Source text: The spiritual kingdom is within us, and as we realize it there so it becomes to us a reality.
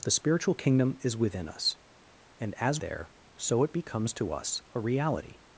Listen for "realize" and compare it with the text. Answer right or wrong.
wrong